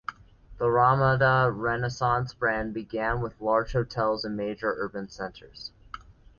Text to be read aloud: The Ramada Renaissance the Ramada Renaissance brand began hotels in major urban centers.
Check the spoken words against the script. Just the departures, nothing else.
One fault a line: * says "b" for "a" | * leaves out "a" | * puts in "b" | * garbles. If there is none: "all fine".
* says "brand began with large" for "the Ramada Renaissance brand began"